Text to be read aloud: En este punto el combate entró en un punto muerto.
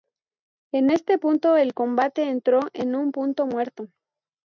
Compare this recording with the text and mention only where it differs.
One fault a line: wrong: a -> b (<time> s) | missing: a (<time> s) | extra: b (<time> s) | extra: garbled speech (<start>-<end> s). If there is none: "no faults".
no faults